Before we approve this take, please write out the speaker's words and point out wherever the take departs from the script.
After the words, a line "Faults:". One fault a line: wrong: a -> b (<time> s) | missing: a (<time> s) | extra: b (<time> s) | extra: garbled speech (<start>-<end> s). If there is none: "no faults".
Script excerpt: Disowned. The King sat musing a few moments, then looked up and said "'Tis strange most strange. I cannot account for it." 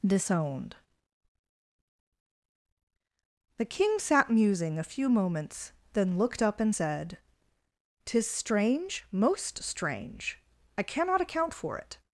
Disowned. The King sat musing a few moments, then looked up and said "'Tis strange most strange. I cannot account for it."
Faults:
no faults